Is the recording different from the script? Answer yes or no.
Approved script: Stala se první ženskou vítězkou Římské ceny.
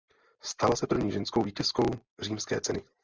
no